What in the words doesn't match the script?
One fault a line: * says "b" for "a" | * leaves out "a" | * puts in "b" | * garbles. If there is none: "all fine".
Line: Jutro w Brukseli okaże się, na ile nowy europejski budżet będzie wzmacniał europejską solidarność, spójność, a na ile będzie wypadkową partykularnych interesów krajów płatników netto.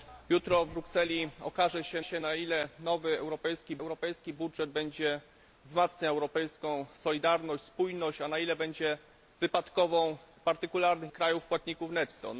* puts in "się"
* puts in "europejski"
* leaves out "interesów"